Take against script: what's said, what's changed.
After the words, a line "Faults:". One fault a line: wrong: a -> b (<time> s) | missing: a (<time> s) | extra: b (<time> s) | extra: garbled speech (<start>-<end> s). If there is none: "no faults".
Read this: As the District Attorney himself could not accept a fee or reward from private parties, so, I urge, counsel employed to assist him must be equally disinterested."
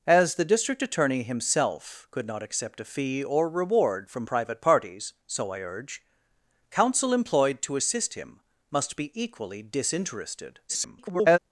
As the District Attorney himself could not accept a fee or reward from private parties, so, I urge, counsel employed to assist him must be equally disinterested." [garbled]
Faults:
extra: garbled speech (10.7-11.4 s)